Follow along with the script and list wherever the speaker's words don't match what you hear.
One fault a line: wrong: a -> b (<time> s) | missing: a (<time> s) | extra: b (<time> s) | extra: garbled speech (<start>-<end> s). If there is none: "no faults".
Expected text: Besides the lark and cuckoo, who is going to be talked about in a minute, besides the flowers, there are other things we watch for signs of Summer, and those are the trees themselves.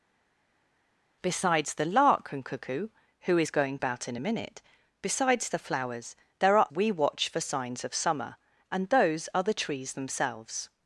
missing: to be talked (3.8 s)
missing: other things (6.7 s)